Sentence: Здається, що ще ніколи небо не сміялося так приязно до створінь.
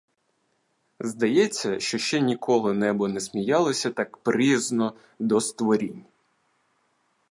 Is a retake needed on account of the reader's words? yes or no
no